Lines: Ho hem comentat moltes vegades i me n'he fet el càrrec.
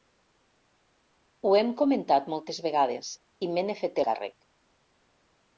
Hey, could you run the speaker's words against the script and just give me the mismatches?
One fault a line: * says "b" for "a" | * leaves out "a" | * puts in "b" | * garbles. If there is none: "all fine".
* leaves out "el"